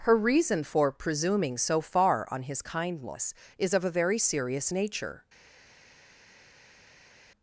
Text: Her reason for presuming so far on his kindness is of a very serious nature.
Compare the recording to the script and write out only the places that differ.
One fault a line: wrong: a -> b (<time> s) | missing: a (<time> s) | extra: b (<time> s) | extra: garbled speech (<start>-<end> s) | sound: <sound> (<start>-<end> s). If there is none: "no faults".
no faults